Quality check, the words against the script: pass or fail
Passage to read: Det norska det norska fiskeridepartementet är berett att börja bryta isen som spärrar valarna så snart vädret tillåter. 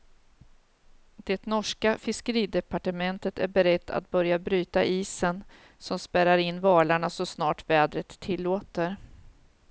fail